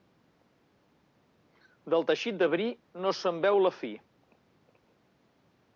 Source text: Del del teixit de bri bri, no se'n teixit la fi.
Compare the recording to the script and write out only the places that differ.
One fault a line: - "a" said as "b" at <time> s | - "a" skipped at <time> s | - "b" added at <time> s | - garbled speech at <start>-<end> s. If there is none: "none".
- "del" skipped at 2.1 s
- "bri" skipped at 2.7 s
- "teixit" said as "veu" at 3.5 s